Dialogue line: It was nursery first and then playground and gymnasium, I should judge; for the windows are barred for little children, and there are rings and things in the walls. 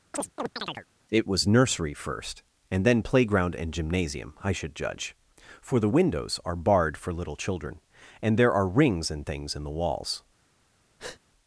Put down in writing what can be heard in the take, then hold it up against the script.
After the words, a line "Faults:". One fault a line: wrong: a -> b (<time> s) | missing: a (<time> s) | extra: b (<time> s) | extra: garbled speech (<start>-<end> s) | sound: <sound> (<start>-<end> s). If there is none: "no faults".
It was nursery first and then playground and gymnasium, I should judge; for the windows are barred for little children, and there are rings and things in the walls.
Faults:
sound: chirp (0.1-0.9 s)
sound: breath (11.0-11.2 s)